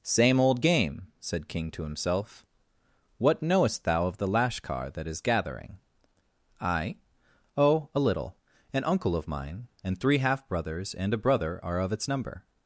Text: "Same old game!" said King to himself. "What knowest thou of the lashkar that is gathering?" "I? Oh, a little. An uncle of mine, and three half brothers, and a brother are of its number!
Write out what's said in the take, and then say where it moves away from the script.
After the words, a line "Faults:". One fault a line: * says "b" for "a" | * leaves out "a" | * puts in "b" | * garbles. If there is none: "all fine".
"Same old game!" said King to himself. "What knowest thou of the lashkar that is gathering?" "I? Oh, a little. An uncle of mine, and three half brothers, and a brother are of its number!
Faults:
all fine